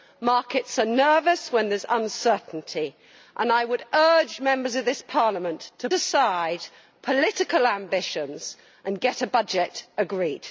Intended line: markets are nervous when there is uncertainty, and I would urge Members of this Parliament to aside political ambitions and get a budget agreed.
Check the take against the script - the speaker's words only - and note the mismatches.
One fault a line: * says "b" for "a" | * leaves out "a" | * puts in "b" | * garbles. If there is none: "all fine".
all fine